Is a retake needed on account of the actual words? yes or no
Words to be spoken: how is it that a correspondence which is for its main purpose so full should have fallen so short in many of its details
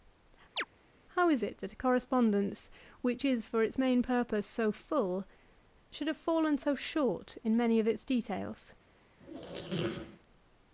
no